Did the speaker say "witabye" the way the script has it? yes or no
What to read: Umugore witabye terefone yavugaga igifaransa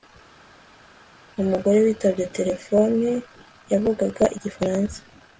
yes